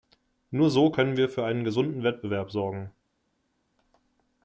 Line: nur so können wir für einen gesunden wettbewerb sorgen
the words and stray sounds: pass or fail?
pass